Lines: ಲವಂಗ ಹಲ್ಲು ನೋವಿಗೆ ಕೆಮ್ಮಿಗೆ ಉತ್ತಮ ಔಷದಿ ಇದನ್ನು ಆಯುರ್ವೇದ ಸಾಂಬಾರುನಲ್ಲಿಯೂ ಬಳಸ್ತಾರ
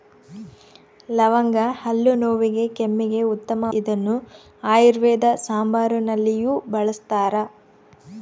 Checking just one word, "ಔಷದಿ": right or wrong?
wrong